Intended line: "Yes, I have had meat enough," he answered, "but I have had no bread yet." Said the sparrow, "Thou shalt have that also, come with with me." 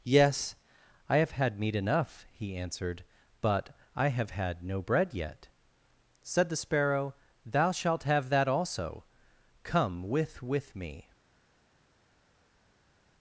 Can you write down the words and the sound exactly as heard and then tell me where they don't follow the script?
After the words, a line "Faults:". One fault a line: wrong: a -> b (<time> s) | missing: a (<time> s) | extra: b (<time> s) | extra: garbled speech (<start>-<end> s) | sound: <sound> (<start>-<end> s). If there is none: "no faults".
"Yes, I have had meat enough," he answered, "but I have had no bread yet." Said the sparrow, "Thou shalt have that also, come with with me."
Faults:
no faults